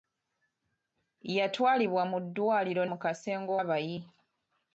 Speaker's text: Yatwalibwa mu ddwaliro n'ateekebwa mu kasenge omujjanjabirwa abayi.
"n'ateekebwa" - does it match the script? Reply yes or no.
no